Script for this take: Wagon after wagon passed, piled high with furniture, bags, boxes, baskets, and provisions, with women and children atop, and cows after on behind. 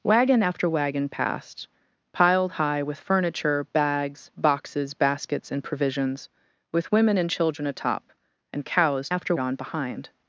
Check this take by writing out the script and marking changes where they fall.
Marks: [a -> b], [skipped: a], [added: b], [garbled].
Wagon after wagon passed, piled high with furniture, bags, boxes, baskets, and provisions, with women and children atop, and cows after on behind.